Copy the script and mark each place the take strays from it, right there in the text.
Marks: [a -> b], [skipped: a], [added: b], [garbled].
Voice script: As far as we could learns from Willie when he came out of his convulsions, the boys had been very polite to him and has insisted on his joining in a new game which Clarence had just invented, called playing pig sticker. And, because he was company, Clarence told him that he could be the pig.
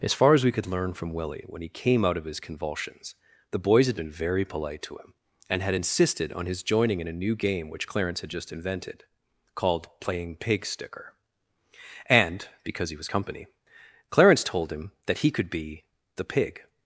As far as we could [learns -> learn] from Willie when he came out of his convulsions, the boys had been very polite to him and [has -> had] insisted on his joining in a new game which Clarence had just invented, called playing pig sticker. And, because he was company, Clarence told him that he could be the pig.